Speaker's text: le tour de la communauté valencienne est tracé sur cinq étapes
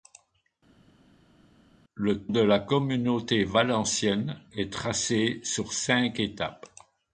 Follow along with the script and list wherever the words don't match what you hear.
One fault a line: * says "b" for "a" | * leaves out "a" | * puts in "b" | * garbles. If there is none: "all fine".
* leaves out "tour"